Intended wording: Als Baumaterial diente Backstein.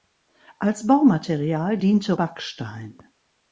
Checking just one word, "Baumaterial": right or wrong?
right